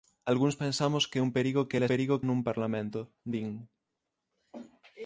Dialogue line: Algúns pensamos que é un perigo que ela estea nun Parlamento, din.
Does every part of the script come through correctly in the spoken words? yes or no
no